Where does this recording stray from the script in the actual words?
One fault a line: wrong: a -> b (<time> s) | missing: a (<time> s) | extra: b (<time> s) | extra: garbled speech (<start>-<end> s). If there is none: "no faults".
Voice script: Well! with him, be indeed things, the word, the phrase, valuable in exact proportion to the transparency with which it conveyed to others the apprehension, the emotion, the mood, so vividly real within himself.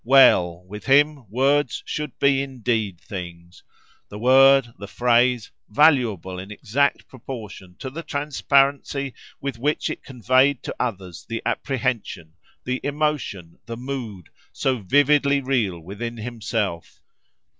extra: words should (1.3 s)